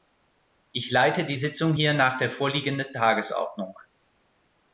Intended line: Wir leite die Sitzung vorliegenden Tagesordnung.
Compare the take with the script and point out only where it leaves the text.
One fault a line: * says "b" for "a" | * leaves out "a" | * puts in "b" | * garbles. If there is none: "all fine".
* says "Ich" for "Wir"
* puts in "hier nach der"